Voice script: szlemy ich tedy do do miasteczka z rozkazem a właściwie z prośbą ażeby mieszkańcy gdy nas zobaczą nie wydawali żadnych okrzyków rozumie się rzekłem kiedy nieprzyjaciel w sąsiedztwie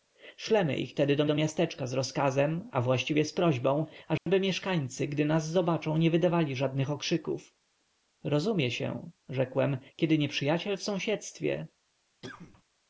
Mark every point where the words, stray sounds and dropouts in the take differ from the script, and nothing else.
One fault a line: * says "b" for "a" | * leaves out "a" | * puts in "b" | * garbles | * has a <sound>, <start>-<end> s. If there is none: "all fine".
* has a dropout, 4.2-4.3 s
* has a cough, 12.2-12.6 s